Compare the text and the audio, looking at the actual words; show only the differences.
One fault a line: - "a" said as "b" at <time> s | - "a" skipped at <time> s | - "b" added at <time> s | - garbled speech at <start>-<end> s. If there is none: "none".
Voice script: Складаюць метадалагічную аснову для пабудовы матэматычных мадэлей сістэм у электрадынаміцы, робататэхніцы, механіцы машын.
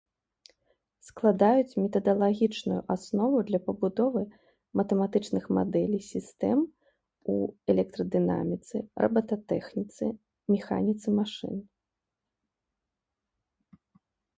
none